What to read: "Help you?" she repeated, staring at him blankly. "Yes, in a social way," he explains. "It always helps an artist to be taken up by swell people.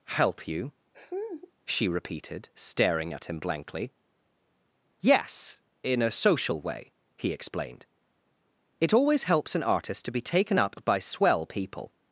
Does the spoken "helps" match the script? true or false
true